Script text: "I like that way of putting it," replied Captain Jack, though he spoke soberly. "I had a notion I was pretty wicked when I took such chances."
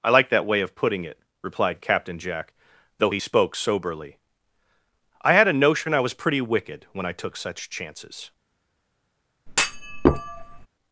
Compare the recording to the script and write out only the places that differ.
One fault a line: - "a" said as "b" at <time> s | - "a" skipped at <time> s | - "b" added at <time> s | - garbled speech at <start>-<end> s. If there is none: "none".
none